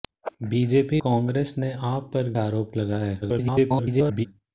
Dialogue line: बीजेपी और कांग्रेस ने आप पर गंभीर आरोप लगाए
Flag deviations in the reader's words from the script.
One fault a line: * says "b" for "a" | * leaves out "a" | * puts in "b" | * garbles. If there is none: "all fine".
* leaves out "और"
* leaves out "गंभीर"
* garbles